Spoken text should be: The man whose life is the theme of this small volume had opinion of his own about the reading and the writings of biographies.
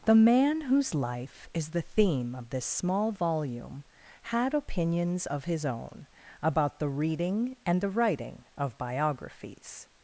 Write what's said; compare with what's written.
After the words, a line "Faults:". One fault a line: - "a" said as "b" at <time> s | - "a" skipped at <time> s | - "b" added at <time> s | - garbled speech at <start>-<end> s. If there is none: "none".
The man whose life is the theme of this small volume had opinions of his own about the reading and the writing of biographies.
Faults:
- "opinion" said as "opinions" at 4.5 s
- "writings" said as "writing" at 7.9 s